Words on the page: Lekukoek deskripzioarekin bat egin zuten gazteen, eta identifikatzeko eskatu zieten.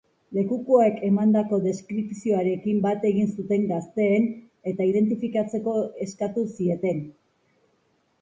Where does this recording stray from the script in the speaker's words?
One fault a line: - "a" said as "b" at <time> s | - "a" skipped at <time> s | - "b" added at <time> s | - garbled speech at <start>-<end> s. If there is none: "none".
- "emandako" added at 1.1 s